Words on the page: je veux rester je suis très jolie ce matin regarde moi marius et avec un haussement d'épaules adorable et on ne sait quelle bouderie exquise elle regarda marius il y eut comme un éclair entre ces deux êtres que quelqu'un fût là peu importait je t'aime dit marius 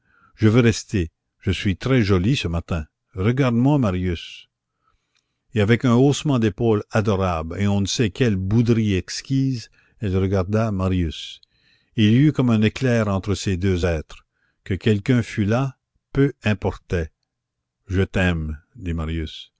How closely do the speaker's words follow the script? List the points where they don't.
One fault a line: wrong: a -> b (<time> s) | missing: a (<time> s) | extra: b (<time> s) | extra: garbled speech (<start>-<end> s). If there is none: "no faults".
no faults